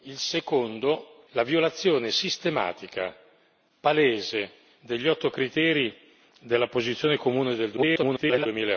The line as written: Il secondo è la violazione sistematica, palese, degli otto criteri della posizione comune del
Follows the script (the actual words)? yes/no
no